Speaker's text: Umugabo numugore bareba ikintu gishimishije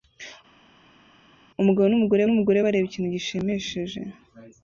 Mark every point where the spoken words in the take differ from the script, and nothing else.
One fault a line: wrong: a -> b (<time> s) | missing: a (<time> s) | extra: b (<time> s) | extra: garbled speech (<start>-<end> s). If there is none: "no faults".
extra: numugore (2.2 s)